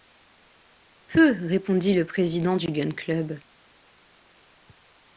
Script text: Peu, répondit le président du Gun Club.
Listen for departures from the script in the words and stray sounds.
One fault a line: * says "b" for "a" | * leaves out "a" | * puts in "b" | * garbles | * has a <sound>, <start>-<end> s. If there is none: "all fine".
all fine